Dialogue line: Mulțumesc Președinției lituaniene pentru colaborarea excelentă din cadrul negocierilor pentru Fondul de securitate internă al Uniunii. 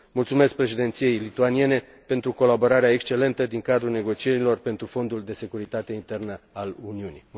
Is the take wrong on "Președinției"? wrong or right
right